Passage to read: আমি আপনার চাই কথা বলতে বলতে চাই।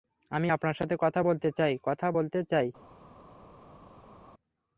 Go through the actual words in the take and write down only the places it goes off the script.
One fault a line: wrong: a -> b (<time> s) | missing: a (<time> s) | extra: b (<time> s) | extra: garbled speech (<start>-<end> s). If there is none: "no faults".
wrong: চাই -> সাথে (0.7 s)
extra: চাই কথা (1.6 s)